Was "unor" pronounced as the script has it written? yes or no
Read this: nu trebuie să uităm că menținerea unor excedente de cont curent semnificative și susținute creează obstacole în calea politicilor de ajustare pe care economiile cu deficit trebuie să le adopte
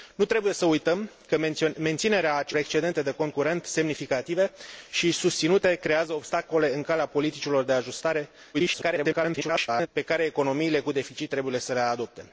no